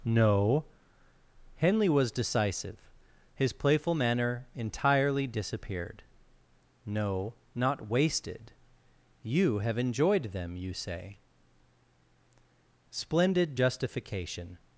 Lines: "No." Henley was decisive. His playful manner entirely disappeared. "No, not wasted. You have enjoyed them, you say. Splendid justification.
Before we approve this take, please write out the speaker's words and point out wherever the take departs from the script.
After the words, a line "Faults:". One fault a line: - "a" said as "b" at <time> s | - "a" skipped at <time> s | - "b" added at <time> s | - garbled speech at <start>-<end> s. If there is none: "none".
"No." Henley was decisive. His playful manner entirely disappeared. "No, not wasted. You have enjoyed them, you say. Splendid justification.
Faults:
none